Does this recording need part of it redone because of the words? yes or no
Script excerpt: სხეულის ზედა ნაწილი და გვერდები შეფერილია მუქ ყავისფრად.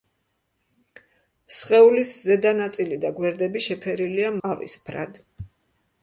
yes